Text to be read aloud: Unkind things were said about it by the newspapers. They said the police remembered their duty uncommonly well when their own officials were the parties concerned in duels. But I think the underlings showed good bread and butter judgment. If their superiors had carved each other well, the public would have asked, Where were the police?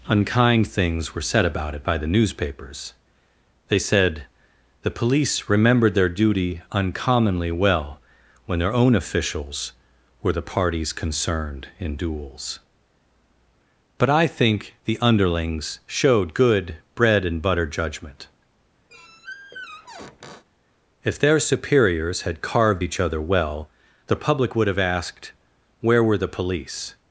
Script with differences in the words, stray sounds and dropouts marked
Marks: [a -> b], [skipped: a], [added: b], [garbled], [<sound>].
Unkind things were said about it by the newspapers. They said the police remembered their duty uncommonly well when their own officials were the parties concerned in duels. But I think the underlings showed good bread and butter judgment. [squeak] If their superiors had carved each other well, the public would have asked, Where were the police?